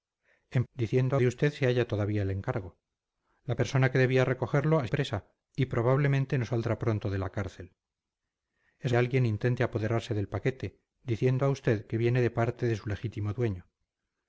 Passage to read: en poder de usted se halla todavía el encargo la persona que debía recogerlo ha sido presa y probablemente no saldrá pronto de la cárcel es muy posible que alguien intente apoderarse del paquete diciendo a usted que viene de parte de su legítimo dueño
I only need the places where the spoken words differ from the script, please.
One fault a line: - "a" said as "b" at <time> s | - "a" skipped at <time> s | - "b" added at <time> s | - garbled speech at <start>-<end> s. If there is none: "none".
- "poder" said as "diciendo" at 0.7 s
- "sido" skipped at 4.9 s
- "muy posible que" skipped at 8.9 s